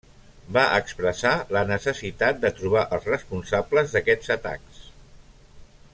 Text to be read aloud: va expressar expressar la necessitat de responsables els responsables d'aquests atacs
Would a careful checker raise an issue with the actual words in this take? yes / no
yes